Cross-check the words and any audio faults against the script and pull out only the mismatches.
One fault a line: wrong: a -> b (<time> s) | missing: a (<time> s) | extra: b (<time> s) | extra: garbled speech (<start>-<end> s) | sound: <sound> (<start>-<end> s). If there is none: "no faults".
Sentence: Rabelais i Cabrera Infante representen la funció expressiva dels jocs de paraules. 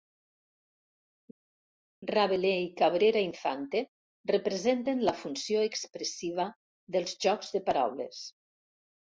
no faults